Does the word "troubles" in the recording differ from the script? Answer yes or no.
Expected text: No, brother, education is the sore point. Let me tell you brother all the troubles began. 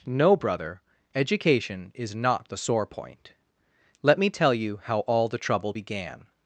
yes